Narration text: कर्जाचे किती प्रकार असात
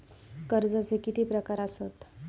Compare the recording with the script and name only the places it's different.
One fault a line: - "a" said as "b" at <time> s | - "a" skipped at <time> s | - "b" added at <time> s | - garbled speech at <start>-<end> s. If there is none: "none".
none